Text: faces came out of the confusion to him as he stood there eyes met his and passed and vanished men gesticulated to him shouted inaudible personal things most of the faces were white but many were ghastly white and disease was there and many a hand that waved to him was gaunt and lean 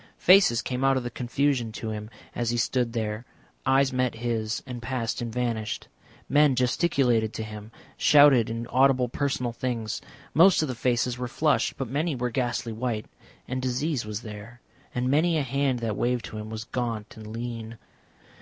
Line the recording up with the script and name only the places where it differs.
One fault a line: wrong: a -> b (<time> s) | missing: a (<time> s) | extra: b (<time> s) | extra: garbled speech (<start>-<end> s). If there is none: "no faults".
wrong: white -> flushed (11.3 s)